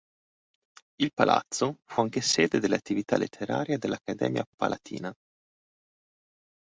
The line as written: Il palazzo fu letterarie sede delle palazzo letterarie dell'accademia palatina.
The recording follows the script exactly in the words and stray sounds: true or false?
false